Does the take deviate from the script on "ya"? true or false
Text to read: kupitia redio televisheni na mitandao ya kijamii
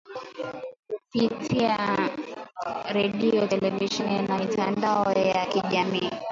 false